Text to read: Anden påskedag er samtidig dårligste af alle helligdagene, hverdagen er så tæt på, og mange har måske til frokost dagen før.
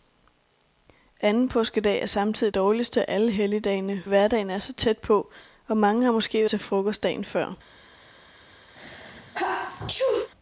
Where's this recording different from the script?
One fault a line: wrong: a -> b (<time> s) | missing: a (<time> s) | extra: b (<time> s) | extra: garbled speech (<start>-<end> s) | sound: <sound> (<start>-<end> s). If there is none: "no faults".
sound: sneeze (8.7-10.3 s)